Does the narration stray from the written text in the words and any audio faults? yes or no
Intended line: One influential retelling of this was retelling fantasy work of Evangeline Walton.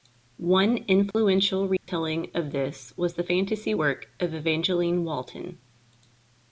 yes